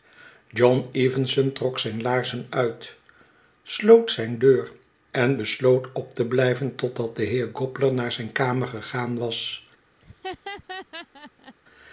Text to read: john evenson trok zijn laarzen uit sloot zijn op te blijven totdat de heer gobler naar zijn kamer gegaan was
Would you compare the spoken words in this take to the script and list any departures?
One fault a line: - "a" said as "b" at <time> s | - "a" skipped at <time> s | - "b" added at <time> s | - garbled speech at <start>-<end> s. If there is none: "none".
- "deur en besloot" added at 4.4 s